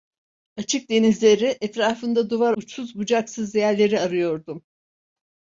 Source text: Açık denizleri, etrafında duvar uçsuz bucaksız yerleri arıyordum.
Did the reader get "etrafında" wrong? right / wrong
right